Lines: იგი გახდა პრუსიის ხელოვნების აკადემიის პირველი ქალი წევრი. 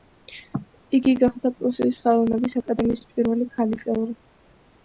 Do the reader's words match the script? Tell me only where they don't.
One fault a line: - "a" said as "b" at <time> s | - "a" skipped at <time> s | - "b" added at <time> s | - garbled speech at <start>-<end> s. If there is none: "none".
none